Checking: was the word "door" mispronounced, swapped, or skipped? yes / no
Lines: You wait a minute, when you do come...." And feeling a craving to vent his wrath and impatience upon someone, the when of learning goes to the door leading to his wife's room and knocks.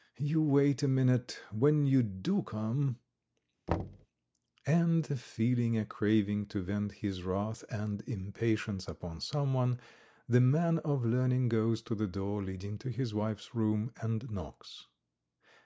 no